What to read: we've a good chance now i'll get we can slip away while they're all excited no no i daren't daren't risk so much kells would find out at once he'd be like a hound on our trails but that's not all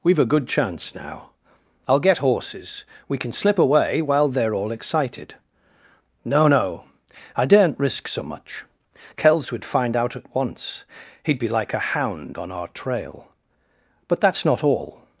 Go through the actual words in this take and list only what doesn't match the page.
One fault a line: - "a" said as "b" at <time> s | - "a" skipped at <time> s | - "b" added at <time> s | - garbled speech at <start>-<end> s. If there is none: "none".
- "horses" added at 2.2 s
- "daren't" skipped at 7.8 s
- "trails" said as "trail" at 12.7 s